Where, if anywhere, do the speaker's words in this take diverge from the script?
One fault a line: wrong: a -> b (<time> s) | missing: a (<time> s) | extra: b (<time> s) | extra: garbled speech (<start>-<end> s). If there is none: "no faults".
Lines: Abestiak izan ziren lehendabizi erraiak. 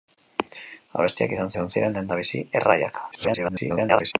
extra: izan (1.5 s)
extra: garbled speech (3.1-4.1 s)